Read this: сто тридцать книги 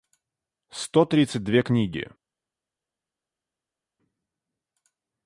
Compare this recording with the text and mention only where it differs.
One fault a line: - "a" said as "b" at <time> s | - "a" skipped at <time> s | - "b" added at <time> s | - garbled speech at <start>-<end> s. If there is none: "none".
- "две" added at 1.4 s